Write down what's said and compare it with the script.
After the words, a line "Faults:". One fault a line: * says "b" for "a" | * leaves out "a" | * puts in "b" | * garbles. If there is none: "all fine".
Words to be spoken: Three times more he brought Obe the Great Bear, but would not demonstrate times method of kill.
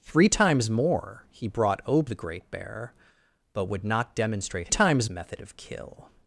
Three times more he brought Obe the Great Bear, but would not demonstrate times method of kill.
Faults:
all fine